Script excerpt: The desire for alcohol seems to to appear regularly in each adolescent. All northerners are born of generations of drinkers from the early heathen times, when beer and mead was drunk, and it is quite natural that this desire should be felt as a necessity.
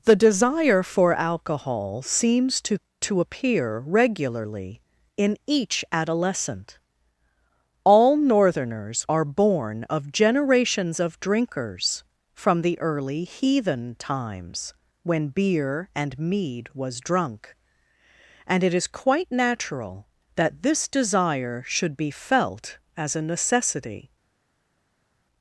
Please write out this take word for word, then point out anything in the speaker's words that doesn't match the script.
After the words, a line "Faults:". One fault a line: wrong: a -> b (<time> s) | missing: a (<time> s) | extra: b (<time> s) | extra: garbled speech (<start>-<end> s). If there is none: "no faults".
The desire for alcohol seems to to appear regularly in each adolescent. All northerners are born of generations of drinkers from the early heathen times, when beer and mead was drunk, and it is quite natural that this desire should be felt as a necessity.
Faults:
no faults